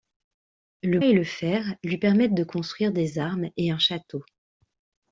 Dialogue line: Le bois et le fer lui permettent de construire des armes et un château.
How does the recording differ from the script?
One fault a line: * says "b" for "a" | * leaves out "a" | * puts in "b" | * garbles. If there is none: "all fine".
* leaves out "bois"